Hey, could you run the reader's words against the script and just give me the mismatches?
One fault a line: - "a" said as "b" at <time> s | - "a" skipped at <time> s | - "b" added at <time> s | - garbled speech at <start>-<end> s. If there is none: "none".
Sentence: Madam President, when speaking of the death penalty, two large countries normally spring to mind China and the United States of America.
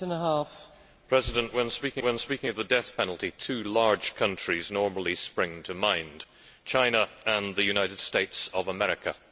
- "when speaking" added at 2.0 s